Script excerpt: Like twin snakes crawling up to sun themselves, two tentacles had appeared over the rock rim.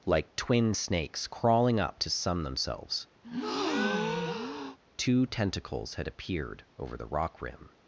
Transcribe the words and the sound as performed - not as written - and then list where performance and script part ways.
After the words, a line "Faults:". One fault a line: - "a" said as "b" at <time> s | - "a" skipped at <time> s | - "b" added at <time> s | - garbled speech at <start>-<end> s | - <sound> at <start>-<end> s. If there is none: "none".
Like twin snakes crawling up to sun themselves, two tentacles had appeared over the rock rim.
Faults:
- breath at 3.2-4.8 s